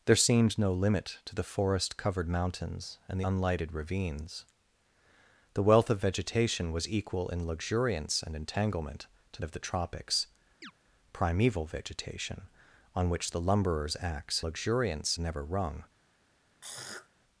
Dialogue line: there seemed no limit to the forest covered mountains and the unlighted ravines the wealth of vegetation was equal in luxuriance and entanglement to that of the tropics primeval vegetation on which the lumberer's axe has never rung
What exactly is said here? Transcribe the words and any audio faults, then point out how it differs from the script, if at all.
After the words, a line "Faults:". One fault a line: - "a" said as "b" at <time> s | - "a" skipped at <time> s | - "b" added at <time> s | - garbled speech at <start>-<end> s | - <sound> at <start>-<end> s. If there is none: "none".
there seemed no limit to the forest covered mountains and unlighted ravines the wealth of vegetation was equal in luxuriance and entanglement to of the tropics primeval vegetation on which the lumberer's axe luxuriance never rung
Faults:
- "the" skipped at 3.2 s
- "that" skipped at 9.4 s
- chirp at 10.6-10.7 s
- "has" said as "luxuriance" at 14.4 s
- throat clearing at 16.6-17.1 s